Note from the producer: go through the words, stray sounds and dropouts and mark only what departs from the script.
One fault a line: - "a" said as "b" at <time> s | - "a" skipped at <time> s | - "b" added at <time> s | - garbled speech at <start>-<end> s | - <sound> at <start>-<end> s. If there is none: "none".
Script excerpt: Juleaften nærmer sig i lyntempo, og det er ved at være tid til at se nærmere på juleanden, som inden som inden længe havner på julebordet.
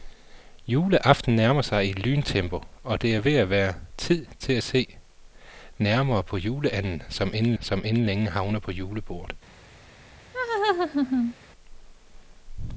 - laugh at 10.3-11.3 s